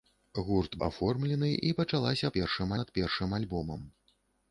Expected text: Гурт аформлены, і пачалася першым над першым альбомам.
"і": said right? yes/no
yes